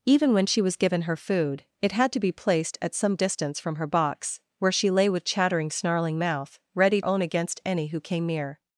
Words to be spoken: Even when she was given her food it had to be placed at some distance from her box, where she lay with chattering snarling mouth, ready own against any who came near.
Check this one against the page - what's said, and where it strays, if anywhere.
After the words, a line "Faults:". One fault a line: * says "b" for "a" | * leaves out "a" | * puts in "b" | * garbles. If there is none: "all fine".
Even when she was given her food it had to be placed at some distance from her box, where she lay with chattering snarling mouth, ready own against any who came near.
Faults:
all fine